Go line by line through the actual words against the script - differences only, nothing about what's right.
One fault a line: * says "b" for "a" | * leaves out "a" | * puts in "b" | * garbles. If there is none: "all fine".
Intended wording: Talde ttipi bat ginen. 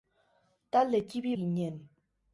* leaves out "bat"